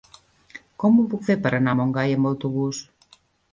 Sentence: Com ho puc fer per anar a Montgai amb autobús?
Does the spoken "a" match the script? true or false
true